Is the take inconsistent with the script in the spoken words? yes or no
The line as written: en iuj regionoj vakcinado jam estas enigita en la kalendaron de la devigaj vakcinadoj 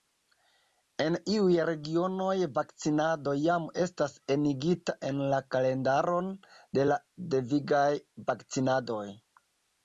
no